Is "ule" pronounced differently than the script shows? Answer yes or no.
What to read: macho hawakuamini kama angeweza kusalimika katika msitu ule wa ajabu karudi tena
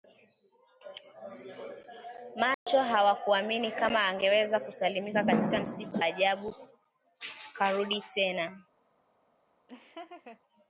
yes